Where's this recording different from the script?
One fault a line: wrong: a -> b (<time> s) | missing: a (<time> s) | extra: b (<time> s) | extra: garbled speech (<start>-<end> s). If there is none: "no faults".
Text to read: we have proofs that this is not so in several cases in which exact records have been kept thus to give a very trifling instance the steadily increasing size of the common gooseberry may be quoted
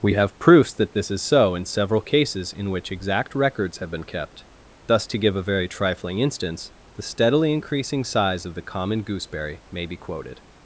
missing: not (1.2 s)